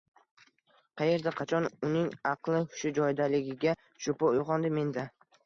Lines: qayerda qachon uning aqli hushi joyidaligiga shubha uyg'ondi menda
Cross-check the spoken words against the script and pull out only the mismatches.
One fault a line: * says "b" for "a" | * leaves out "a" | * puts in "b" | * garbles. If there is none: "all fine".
all fine